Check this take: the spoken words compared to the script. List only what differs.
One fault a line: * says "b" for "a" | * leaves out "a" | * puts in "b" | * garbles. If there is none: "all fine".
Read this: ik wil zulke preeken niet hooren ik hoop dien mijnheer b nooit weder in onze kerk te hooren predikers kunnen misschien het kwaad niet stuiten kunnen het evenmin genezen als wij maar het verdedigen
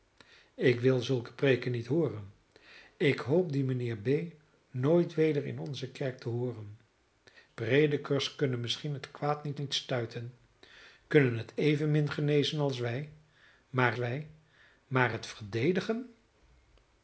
* puts in "niet"
* puts in "wij maar"